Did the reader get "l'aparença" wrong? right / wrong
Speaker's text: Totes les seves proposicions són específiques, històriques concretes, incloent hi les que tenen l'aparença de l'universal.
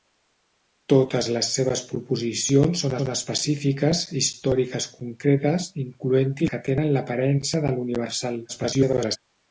right